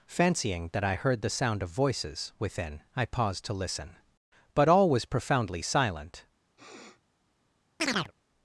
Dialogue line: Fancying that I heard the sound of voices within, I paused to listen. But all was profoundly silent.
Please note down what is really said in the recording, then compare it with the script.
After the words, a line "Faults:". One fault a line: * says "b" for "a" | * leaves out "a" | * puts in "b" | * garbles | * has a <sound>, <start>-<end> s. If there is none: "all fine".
Fancying that I heard the sound of voices within, I paused to listen. But all was profoundly silent.
Faults:
* has a sniff, 6.6-7.0 s
* has a chirp, 7.8-8.1 s